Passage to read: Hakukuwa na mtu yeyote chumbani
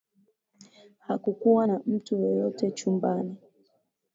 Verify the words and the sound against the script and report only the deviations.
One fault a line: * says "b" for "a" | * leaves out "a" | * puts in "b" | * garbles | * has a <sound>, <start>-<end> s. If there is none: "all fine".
all fine